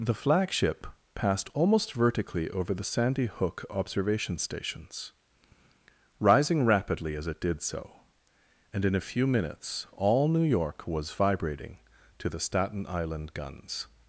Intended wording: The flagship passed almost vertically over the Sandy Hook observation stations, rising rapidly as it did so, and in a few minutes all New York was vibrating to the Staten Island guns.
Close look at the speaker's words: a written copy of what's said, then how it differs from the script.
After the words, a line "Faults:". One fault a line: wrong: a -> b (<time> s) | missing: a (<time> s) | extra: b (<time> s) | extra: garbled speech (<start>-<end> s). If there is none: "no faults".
The flagship passed almost vertically over the Sandy Hook observation stations, rising rapidly as it did so, and in a few minutes all New York was vibrating to the Staten Island guns.
Faults:
no faults